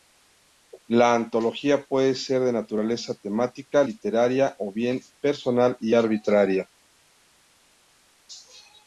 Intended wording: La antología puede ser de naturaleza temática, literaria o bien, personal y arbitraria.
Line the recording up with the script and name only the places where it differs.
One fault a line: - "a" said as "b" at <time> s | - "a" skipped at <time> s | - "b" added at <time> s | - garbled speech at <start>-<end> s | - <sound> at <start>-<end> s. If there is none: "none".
none